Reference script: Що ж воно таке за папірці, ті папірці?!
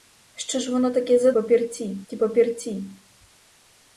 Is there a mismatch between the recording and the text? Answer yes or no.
no